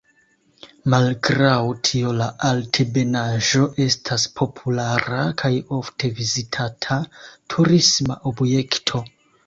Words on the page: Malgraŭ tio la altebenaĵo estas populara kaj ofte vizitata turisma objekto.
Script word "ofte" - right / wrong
right